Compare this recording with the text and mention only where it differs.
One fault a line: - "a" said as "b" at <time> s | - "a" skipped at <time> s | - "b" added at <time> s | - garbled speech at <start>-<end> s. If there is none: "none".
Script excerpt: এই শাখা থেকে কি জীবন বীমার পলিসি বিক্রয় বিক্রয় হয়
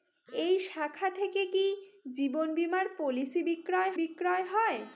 none